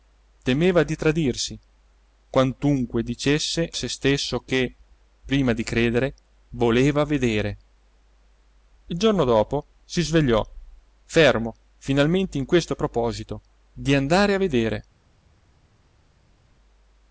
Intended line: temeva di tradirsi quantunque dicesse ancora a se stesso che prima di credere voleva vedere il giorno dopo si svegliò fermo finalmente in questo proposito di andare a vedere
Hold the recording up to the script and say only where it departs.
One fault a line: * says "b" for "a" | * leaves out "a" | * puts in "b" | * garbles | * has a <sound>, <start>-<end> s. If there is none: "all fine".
* leaves out "ancora"